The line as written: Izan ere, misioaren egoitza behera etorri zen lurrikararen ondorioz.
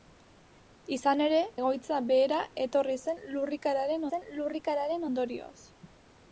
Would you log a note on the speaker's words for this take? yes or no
yes